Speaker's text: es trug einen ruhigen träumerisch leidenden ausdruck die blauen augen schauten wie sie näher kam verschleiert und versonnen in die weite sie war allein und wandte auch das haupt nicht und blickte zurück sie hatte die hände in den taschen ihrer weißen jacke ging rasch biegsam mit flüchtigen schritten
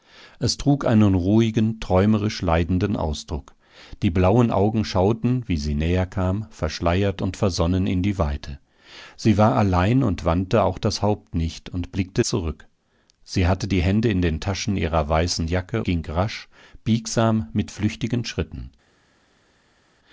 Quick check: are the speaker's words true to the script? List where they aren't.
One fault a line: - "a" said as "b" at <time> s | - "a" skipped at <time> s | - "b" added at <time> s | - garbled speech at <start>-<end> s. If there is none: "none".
none